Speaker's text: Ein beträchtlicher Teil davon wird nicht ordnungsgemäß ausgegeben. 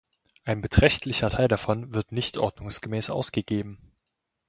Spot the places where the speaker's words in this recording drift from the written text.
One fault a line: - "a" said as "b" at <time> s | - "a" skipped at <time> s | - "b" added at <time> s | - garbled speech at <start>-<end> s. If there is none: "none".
none